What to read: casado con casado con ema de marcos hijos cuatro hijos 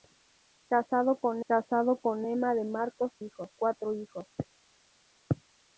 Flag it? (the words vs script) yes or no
no